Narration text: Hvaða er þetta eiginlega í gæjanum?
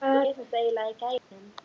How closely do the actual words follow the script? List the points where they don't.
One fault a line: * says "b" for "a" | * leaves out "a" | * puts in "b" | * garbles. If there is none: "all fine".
all fine